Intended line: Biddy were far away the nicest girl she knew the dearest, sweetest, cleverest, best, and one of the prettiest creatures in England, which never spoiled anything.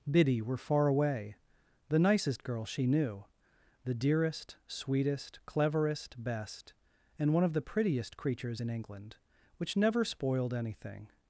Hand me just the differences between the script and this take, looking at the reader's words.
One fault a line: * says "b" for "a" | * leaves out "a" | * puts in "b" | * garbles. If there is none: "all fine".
all fine